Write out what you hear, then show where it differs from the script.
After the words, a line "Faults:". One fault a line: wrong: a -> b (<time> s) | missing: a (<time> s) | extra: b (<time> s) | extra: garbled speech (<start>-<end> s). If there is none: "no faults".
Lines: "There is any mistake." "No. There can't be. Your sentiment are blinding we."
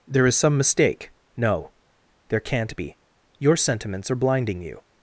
"There is some mistake." "No. There can't be. Your sentiments are blinding you."
Faults:
wrong: any -> some (0.3 s)
wrong: sentiment -> sentiments (3.6 s)
wrong: we -> you (4.6 s)